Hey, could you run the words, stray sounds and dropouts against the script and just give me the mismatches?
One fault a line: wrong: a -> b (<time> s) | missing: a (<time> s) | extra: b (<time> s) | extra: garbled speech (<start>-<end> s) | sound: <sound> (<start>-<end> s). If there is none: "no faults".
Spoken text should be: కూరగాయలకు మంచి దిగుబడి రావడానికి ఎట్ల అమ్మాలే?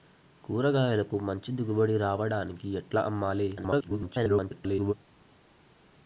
extra: garbled speech (3.6-4.9 s)